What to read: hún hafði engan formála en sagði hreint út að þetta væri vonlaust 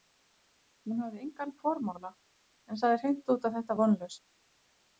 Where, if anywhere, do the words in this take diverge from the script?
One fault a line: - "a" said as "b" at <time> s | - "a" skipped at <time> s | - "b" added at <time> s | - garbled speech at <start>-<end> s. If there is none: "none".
- "væri" skipped at 3.8 s